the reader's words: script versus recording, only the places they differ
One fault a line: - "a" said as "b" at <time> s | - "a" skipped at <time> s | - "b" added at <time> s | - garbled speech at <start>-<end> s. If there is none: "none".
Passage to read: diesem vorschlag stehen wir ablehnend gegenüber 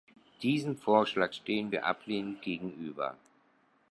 none